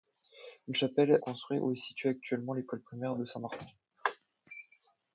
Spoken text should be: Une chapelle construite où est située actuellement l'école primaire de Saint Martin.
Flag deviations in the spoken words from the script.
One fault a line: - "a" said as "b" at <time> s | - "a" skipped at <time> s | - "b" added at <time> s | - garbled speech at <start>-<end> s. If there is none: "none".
none